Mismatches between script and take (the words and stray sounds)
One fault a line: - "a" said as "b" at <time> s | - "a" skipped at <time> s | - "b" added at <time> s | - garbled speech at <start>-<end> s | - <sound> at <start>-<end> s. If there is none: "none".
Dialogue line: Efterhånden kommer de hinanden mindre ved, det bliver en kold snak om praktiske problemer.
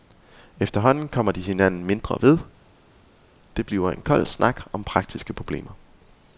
none